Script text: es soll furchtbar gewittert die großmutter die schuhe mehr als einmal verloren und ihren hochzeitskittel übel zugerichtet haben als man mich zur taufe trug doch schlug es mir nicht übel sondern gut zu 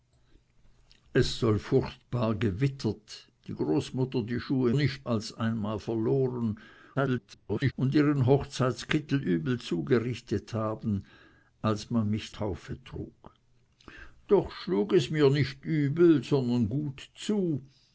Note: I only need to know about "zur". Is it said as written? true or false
false